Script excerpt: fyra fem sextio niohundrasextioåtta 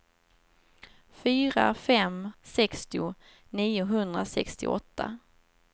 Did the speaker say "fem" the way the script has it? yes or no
yes